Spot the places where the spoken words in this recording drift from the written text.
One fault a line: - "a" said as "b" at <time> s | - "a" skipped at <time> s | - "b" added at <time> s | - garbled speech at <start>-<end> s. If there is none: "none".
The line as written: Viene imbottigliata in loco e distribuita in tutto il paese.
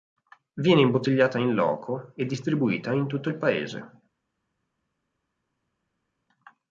none